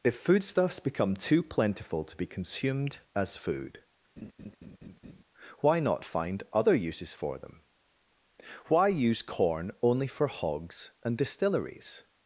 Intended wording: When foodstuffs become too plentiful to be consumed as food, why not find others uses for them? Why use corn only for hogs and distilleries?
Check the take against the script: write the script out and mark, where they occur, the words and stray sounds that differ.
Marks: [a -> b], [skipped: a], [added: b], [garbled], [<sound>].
[When -> If] foodstuffs become too plentiful to be consumed as food, [laugh] why not find [others -> other] uses for them? Why use corn only for hogs and distilleries?